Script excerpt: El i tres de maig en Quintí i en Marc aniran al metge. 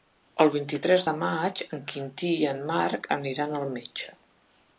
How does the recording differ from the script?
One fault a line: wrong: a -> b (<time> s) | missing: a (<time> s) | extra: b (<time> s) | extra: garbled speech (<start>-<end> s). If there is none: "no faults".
extra: vint (0.5 s)